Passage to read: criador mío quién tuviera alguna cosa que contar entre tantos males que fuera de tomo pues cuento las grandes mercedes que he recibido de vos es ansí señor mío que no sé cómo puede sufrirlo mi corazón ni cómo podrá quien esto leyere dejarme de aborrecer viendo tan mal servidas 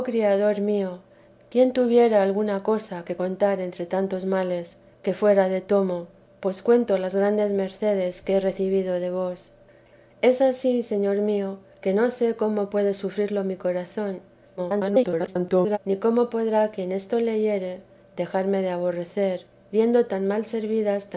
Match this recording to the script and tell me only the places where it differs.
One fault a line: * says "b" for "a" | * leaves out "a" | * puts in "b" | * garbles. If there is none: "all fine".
* garbles